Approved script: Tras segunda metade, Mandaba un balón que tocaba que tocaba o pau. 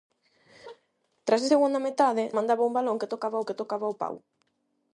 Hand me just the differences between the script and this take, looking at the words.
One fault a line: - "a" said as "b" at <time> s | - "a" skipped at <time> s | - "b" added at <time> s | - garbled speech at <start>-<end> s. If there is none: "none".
none